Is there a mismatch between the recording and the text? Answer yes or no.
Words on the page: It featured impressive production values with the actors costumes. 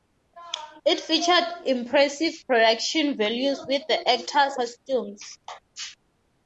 no